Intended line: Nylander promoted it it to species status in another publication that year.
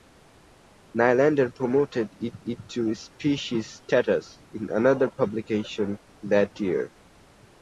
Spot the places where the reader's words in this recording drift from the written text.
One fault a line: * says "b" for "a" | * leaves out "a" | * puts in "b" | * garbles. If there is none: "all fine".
all fine